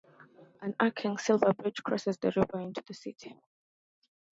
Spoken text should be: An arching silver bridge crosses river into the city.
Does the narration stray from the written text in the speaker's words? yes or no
yes